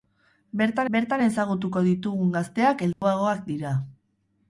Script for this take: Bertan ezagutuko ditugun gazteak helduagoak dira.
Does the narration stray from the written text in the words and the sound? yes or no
yes